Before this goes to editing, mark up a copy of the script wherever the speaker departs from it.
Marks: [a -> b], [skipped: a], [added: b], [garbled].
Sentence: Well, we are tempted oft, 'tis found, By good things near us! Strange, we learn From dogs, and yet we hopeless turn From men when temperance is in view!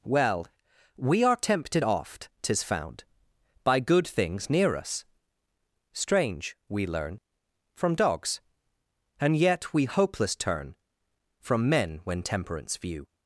Well, we are tempted oft, 'tis found, By good things near us! Strange, we learn From dogs, and yet we hopeless turn From men when temperance [skipped: is in] view!